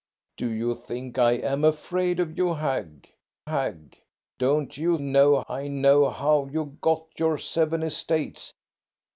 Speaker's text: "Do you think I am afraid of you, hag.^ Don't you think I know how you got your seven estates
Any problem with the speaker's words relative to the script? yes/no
yes